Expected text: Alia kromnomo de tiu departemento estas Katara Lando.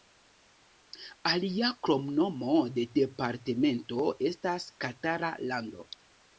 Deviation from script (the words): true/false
true